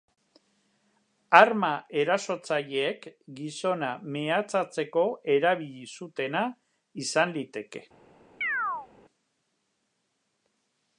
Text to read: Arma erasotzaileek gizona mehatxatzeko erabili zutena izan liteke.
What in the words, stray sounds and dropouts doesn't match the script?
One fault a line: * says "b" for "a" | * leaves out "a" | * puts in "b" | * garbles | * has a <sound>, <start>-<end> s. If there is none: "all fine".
* has a chirp, 8.4-8.9 s